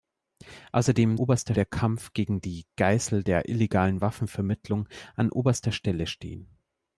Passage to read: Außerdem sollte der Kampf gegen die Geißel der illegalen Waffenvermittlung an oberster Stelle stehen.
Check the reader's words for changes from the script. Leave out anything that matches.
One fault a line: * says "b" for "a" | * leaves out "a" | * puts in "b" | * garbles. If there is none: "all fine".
* says "oberster" for "sollte"